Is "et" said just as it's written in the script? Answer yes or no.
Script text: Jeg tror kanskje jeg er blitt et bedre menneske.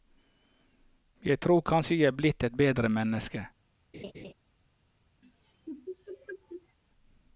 yes